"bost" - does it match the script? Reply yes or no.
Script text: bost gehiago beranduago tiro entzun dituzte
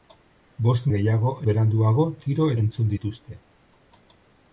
yes